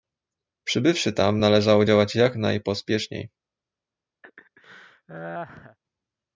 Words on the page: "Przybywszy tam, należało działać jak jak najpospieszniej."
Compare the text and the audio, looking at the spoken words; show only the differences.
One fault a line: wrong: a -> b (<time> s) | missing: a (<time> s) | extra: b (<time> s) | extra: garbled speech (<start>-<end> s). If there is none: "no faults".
missing: jak (2.4 s)